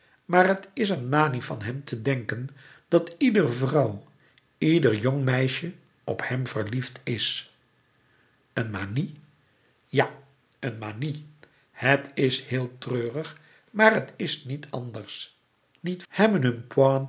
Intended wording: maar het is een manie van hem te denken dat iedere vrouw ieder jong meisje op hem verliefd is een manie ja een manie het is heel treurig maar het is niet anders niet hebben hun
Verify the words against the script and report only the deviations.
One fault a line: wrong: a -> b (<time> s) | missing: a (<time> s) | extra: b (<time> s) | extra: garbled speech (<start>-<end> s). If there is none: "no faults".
no faults